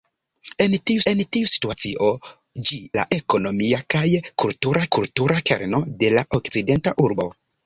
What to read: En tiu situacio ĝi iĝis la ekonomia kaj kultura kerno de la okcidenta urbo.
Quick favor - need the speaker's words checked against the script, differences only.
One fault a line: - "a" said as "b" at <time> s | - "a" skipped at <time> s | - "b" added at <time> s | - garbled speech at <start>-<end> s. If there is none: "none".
- "en tiu" added at 1.1 s
- "iĝis" skipped at 2.8 s
- "kultura" added at 5.0 s